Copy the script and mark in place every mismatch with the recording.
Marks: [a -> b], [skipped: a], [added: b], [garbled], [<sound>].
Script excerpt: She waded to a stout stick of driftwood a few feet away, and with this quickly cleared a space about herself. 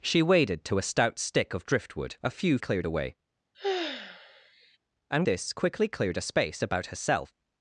She waded to a stout stick of driftwood a few [feet -> cleared] away, [sigh] and [skipped: with] this quickly cleared a space about herself.